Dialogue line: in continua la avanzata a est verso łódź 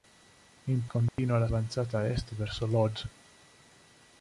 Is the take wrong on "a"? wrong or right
right